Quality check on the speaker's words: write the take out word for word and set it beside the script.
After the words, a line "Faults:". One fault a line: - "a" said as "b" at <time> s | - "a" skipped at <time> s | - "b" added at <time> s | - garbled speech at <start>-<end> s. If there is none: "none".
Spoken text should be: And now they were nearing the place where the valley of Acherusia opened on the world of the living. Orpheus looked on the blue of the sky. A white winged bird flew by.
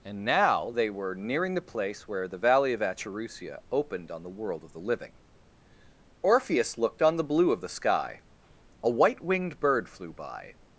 And now they were nearing the place where the valley of Acherusia opened on the world of the living. Orpheus looked on the blue of the sky. A white winged bird flew by.
Faults:
none